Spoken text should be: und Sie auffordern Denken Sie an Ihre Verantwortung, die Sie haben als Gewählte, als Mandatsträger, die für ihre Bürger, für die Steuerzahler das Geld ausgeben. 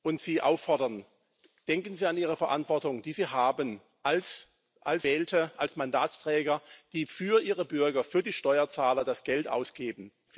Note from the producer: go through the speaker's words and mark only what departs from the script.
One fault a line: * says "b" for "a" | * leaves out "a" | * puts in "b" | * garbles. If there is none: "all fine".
all fine